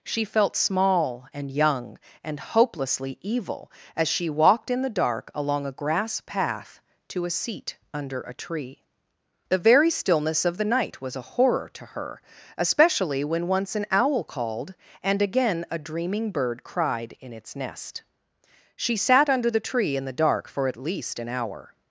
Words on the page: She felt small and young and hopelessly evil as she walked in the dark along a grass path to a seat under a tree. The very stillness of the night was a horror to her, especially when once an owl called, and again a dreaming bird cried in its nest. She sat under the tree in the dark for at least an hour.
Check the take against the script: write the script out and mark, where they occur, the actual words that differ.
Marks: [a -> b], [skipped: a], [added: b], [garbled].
She felt small and young and hopelessly evil as she walked in the dark along a grass path to a seat under a tree. The very stillness of the night was a horror to her, especially when once an owl called, and again a dreaming bird cried in its nest. She sat under the tree in the dark for at least an hour.